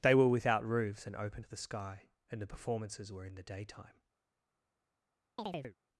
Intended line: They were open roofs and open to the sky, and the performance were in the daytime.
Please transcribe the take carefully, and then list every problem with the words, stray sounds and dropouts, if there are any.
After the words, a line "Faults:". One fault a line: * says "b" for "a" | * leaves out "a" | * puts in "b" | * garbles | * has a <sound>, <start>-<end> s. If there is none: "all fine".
They were without roofs and open to the sky, and the performances were in the daytime.
Faults:
* says "without" for "open"
* says "performances" for "performance"
* has a chirp, 5.4-5.8 s